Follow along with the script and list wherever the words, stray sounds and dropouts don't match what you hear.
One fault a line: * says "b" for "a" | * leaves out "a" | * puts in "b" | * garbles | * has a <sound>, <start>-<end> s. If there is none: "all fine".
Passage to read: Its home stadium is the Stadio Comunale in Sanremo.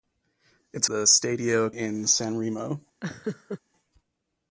* leaves out "home stadium is"
* leaves out "Comunale"
* has a laugh, 3.0-3.6 s